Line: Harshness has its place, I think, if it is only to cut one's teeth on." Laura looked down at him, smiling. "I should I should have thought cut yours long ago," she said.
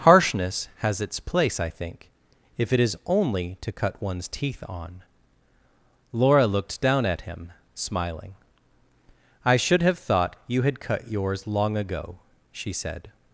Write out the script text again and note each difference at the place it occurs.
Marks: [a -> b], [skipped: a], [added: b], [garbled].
Harshness has its place, I think, if it is only to cut one's teeth on." Laura looked down at him, smiling. "I should [I should have thought -> have thought you had] cut yours long ago," she said.